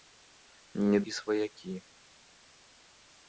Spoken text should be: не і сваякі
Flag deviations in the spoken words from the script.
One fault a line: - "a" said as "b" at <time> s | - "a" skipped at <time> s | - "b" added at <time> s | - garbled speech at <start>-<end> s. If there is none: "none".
none